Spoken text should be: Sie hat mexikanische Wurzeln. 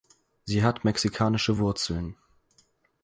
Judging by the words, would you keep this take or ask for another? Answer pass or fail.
pass